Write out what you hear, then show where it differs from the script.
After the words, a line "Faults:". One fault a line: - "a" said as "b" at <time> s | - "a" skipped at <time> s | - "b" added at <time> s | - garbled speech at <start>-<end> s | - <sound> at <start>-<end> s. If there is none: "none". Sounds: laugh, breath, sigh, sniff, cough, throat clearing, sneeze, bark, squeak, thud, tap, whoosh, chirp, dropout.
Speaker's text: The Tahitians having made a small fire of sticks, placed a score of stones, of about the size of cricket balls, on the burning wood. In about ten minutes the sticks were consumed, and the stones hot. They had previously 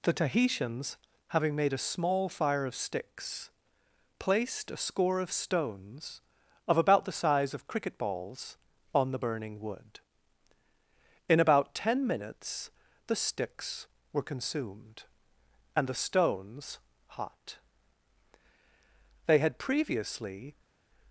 The Tahitians having made a small fire of sticks, placed a score of stones, of about the size of cricket balls, on the burning wood. In about ten minutes the sticks were consumed, and the stones hot. They had previously
Faults:
none